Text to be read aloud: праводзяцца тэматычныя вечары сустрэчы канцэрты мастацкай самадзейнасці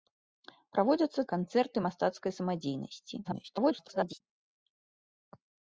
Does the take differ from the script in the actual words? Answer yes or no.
yes